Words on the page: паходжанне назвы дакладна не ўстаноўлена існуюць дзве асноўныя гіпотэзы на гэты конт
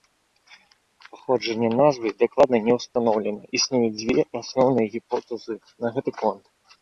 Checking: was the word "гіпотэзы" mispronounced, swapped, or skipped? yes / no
no